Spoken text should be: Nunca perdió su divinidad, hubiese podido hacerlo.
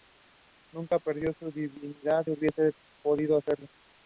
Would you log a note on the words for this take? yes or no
no